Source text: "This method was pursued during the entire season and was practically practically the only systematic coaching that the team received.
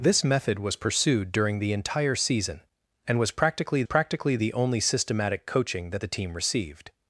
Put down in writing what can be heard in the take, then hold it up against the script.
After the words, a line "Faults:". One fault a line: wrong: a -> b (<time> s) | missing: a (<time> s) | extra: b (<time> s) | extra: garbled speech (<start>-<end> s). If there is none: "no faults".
"This method was pursued during the entire season and was practically practically the only systematic coaching that the team received.
Faults:
no faults